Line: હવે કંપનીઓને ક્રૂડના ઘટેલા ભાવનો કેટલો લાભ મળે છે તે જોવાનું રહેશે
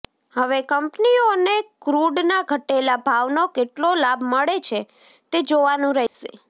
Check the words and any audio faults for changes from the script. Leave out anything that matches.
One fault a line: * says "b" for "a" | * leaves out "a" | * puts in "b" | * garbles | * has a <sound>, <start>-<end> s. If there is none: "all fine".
* has a dropout, 6.1-6.1 s